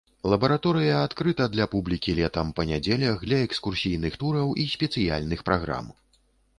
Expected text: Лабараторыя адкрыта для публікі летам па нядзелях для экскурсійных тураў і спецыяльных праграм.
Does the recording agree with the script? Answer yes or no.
yes